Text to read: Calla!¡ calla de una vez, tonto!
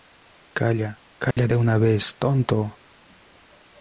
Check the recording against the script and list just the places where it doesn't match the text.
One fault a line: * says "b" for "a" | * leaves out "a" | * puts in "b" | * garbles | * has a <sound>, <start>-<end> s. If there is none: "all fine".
* has a dropout, 1.3-1.4 s